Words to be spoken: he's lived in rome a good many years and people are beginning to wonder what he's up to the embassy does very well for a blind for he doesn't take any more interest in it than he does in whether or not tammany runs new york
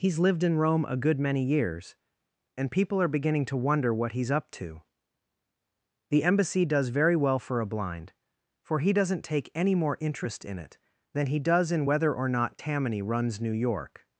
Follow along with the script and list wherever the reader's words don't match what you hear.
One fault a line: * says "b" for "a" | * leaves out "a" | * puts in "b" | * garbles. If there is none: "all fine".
all fine